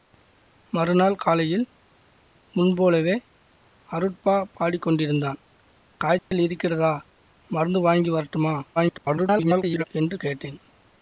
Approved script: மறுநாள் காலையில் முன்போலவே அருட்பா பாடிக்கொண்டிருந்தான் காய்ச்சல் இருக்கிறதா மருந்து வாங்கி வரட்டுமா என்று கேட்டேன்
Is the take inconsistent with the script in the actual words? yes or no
yes